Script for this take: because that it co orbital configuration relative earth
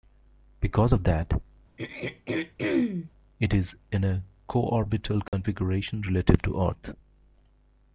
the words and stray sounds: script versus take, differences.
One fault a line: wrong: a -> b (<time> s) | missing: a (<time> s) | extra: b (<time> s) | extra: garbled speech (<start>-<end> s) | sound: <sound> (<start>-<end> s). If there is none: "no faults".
extra: of (0.9 s)
sound: throat clearing (1.8-3.1 s)
extra: is in a (3.5 s)
sound: dropout (5.3-5.3 s)
extra: to (6.4 s)